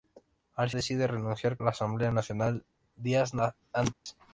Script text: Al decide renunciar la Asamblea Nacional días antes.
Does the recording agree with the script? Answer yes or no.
yes